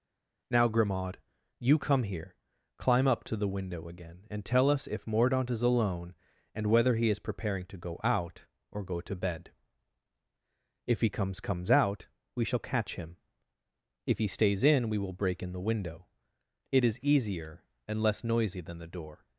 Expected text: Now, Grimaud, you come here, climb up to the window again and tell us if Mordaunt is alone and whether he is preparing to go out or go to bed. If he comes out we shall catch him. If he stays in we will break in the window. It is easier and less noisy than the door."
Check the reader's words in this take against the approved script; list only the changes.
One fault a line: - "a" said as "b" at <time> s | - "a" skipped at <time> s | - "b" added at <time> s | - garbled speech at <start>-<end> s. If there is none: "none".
- "comes" added at 11.4 s